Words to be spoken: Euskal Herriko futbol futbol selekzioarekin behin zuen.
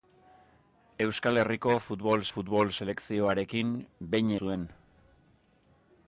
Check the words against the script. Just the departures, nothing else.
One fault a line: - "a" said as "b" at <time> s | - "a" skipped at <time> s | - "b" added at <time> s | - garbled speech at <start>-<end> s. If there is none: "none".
none